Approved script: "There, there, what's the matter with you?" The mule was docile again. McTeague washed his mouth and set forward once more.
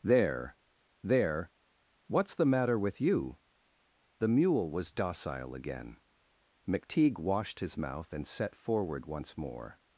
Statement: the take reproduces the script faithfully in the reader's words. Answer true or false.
true